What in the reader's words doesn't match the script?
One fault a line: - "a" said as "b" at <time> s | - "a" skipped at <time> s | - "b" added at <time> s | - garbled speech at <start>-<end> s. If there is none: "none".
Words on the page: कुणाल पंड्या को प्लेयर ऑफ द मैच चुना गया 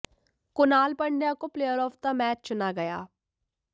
none